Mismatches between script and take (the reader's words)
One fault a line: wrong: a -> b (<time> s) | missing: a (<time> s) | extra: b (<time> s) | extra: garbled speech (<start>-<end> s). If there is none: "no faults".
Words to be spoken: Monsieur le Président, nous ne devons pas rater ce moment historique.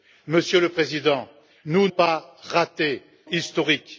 missing: ne devons (1.9 s)
missing: ce moment (3.0 s)